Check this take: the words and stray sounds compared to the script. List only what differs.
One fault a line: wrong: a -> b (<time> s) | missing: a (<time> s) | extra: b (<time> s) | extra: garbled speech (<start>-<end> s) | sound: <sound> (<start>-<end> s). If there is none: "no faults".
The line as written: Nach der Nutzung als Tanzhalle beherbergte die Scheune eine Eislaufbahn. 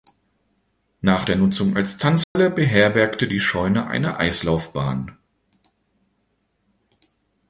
sound: dropout (2.2-2.4 s)